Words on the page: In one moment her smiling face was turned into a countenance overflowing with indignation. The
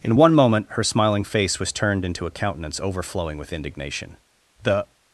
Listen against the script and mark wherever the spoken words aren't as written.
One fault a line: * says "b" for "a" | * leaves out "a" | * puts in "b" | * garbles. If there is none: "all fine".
all fine